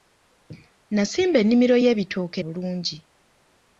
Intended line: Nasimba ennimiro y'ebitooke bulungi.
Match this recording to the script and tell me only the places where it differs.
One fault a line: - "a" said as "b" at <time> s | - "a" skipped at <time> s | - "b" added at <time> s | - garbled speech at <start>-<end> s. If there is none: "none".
none